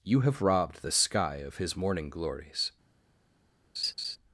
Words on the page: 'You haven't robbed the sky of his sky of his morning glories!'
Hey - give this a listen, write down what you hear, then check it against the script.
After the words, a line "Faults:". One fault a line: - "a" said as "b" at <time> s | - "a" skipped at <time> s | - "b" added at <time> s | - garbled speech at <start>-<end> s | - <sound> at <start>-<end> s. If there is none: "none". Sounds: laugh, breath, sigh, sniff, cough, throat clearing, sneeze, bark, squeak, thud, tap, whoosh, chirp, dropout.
'You have robbed the sky of his morning glories!'
Faults:
- "haven't" said as "have" at 0.2 s
- "sky of his" skipped at 1.8 s
- laugh at 3.8-4.2 s